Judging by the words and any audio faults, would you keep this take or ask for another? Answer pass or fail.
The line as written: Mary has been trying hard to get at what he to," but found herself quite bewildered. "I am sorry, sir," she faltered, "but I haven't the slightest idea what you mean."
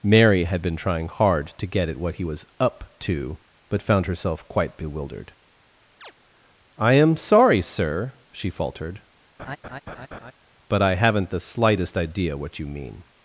fail